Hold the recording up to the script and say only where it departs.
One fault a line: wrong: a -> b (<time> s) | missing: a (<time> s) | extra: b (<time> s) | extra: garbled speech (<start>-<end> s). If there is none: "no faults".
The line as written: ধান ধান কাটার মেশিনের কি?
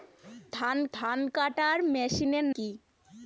no faults